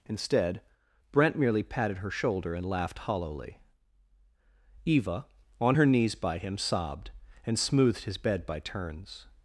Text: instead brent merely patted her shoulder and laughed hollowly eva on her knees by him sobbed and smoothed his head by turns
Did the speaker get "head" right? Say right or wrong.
wrong